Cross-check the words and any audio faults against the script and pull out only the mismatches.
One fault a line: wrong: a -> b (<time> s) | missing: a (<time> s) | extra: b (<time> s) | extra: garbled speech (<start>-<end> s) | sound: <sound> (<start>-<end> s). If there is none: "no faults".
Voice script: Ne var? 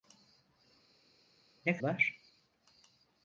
no faults